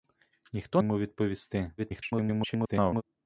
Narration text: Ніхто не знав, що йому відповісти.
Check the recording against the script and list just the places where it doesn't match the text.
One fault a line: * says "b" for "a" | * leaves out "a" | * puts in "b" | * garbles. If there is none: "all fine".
* leaves out "не знав що"
* garbles